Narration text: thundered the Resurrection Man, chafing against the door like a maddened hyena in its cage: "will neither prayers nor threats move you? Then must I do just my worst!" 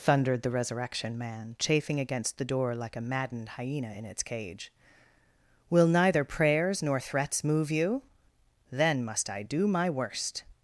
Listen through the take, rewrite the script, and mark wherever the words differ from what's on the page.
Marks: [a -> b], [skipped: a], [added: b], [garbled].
thundered the Resurrection Man, chafing against the door like a maddened hyena in its cage: "will neither prayers nor threats move you? Then must I do [skipped: just] my worst!"